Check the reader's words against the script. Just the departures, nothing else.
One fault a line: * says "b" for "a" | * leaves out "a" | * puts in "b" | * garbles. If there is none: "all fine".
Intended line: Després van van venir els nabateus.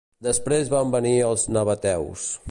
* leaves out "van"